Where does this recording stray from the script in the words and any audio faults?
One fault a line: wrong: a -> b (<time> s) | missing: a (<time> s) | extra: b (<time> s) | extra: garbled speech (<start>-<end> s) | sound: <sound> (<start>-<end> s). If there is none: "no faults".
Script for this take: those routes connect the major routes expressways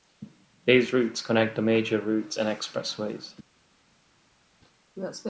wrong: those -> these (0.7 s)
extra: and (2.4 s)